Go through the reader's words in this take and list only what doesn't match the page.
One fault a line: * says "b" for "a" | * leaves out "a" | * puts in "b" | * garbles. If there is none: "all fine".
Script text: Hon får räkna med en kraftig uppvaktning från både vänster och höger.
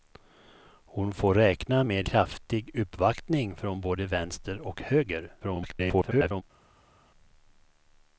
* leaves out "en"
* garbles